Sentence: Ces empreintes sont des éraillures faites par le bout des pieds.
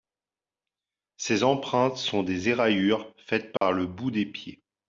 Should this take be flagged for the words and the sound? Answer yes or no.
yes